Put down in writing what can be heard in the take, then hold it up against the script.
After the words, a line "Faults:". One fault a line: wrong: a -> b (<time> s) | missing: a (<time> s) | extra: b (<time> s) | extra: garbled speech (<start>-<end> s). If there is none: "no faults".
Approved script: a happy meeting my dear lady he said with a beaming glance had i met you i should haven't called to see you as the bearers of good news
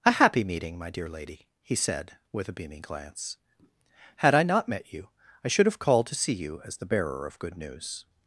a happy meeting my dear lady he said with a beaming glance had i not met you i should have called to see you as the bearer of good news
Faults:
extra: not (4.4 s)
wrong: haven't -> have (5.7 s)
wrong: bearers -> bearer (6.9 s)